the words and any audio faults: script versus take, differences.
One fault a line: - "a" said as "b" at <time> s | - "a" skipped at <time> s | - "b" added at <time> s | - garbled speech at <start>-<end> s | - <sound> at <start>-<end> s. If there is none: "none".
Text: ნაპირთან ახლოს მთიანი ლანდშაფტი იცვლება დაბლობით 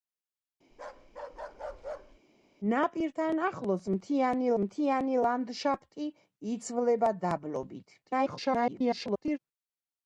- bark at 0.7-2.2 s
- "მთიანი" added at 4.6 s
- garbled speech at 8.0-9.4 s